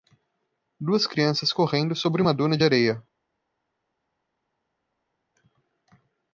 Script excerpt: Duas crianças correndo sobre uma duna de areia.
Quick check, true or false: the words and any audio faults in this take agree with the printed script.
true